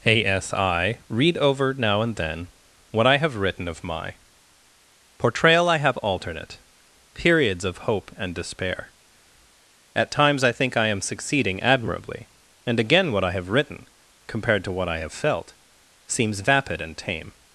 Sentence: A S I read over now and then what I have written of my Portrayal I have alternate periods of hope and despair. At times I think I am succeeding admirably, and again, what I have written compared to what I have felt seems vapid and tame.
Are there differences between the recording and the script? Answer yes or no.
no